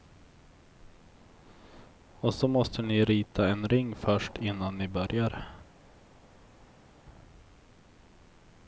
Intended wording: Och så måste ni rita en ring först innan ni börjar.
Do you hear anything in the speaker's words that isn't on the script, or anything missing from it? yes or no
no